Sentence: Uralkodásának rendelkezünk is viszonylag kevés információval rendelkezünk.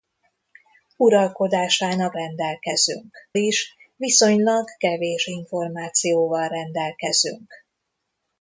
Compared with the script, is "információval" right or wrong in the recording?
right